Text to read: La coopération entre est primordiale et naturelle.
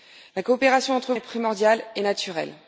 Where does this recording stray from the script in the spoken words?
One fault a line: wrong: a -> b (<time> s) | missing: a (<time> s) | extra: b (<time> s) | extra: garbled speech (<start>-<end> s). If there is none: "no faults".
no faults